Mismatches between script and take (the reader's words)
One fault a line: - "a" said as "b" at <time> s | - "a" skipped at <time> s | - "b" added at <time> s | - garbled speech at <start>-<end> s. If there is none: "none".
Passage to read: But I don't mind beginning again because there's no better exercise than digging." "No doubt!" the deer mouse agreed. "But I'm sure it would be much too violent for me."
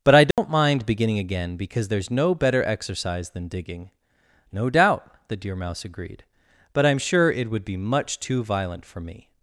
none